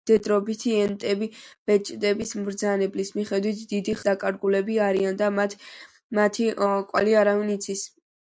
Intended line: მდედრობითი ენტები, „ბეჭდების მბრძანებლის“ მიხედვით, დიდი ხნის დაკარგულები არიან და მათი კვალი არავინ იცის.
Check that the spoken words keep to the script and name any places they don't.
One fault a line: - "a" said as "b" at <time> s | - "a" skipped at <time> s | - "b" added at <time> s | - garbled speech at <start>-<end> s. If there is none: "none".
- "ხნის" skipped at 4.0 s